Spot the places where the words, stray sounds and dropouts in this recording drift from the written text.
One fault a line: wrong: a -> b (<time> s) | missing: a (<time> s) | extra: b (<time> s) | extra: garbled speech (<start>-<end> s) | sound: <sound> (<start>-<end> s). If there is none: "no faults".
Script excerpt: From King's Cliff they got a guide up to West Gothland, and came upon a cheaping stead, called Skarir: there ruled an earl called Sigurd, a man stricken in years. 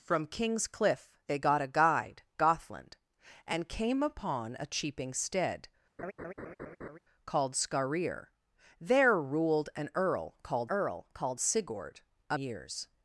missing: up to West (2.2 s)
sound: laugh (6.0-7.0 s)
extra: earl called (10.7 s)
missing: man stricken in (12.4 s)